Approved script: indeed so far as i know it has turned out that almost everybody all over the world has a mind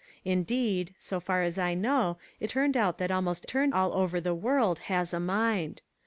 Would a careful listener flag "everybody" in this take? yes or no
yes